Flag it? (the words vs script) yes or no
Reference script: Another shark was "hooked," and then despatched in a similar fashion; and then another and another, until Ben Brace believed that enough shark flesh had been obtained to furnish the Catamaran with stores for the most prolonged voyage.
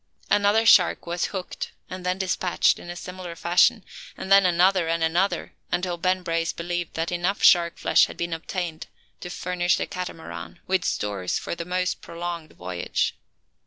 no